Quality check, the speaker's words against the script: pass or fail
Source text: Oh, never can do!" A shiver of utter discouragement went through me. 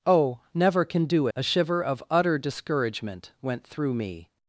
pass